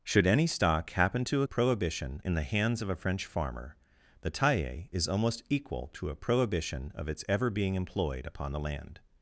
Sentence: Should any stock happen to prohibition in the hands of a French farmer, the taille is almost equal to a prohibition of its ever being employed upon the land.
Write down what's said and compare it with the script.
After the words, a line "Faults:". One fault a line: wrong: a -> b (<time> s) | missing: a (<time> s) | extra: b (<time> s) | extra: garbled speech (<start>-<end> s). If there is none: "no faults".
Should any stock happen to prohibition in the hands of a French farmer, the taille is almost equal to a prohibition of its ever being employed upon the land.
Faults:
no faults